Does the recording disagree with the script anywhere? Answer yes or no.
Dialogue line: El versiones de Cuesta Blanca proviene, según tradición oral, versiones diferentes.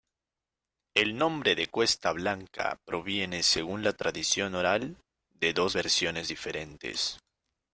yes